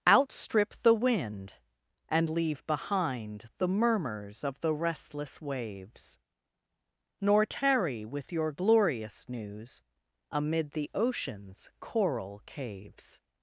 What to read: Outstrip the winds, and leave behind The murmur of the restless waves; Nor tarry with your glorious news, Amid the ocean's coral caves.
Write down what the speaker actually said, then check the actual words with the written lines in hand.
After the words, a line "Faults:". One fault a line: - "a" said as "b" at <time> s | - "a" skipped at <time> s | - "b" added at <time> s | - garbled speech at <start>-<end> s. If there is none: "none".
Outstrip the wind, and leave behind The murmurs of the restless waves; Nor tarry with your glorious news, Amid the ocean's coral caves.
Faults:
- "winds" said as "wind" at 0.9 s
- "murmur" said as "murmurs" at 3.7 s